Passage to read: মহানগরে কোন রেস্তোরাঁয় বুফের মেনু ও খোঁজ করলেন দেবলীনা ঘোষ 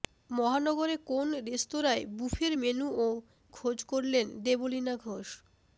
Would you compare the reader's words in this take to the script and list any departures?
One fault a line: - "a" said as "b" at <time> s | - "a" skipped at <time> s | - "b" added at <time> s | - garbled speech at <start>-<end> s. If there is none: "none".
none